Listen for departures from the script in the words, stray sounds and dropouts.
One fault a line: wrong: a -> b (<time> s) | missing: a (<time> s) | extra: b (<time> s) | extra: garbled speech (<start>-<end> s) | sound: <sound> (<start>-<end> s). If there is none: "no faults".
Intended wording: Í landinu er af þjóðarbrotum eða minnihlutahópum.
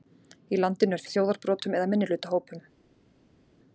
no faults